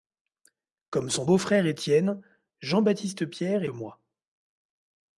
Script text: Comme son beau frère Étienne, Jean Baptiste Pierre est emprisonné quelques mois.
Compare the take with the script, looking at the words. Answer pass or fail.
fail